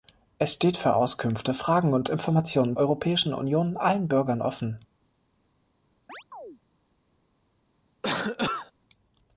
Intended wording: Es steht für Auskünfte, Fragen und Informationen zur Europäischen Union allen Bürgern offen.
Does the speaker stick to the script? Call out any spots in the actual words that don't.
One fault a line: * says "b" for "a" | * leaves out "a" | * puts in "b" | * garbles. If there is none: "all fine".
* leaves out "zur"